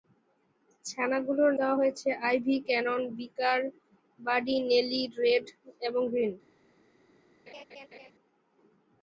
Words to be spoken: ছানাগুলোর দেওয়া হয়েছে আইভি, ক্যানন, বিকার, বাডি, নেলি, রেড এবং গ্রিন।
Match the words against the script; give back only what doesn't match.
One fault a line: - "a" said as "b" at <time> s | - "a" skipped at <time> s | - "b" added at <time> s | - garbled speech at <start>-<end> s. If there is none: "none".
none